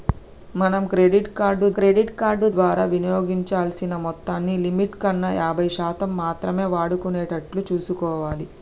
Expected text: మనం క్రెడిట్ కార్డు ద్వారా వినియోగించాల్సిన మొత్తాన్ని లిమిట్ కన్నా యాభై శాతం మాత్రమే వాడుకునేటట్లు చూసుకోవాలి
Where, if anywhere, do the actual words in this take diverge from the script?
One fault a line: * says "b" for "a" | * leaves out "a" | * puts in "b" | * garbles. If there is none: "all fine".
* puts in "క్రెడిట్ కార్డు"